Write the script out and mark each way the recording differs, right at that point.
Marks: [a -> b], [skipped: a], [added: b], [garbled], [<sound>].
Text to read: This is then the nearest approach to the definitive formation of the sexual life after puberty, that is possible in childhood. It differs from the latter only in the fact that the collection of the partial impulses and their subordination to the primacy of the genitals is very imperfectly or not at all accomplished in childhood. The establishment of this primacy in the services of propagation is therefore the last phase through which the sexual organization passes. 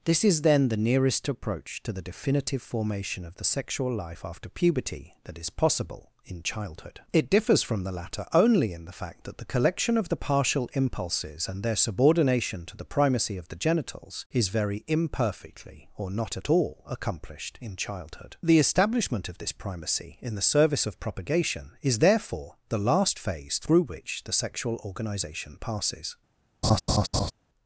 This is then the nearest approach to the definitive formation of the sexual life after puberty, that is possible in childhood. It differs from the latter only in the fact that the collection of the partial impulses and their subordination to the primacy of the genitals is very imperfectly or not at all accomplished in childhood. The establishment of this primacy in the [services -> service] of propagation is therefore the last phase through which the sexual organization passes. [laugh]